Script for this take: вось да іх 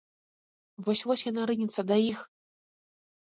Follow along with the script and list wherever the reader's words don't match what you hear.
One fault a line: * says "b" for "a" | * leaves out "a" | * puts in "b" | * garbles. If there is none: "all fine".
* puts in "вось яна рынецца"